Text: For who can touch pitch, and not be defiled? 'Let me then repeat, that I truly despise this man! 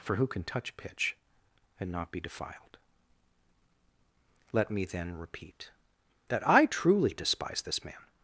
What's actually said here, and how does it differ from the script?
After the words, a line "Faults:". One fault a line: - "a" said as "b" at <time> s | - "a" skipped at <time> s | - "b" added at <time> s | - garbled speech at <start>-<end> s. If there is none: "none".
For who can touch pitch, and not be defiled? 'Let me then repeat, that I truly despise this man!
Faults:
none